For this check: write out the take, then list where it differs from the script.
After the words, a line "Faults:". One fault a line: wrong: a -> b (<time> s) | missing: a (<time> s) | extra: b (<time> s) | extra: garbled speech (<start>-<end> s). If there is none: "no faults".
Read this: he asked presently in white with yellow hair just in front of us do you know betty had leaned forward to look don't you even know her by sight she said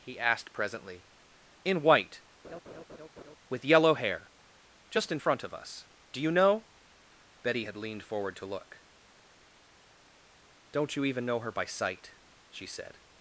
he asked presently in white with yellow hair just in front of us do you know betty had leaned forward to look don't you even know her by sight she said
Faults:
no faults